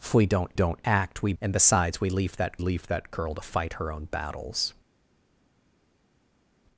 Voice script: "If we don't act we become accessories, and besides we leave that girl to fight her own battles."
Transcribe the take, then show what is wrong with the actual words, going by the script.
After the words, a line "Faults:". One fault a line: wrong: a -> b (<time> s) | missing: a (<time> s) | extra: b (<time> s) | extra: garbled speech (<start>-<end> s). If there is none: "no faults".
"If we don't don't act we and besides we leave that leave that girl to fight her own battles."
Faults:
extra: don't (0.5 s)
missing: become accessories (1.3 s)
extra: leave that (2.6 s)